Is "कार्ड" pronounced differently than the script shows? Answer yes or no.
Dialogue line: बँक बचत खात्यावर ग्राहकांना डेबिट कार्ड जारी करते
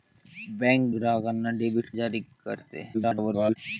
yes